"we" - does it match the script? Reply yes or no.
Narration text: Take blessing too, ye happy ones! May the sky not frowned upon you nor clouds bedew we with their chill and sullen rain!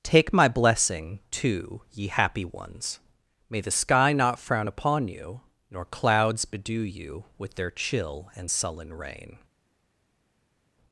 no